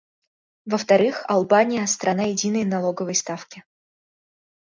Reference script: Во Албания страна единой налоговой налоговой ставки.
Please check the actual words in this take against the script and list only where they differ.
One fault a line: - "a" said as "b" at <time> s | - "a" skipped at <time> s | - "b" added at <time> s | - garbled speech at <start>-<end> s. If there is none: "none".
- "вторых" added at 0.8 s
- "налоговой" skipped at 3.2 s